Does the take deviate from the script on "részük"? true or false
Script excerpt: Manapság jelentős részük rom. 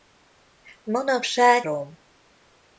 true